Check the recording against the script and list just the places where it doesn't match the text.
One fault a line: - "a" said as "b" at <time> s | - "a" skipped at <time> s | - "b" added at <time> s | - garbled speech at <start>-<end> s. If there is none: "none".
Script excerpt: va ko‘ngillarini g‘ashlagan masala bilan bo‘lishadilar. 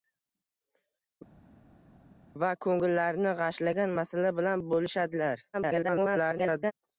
- garbled speech at 5.5-6.7 s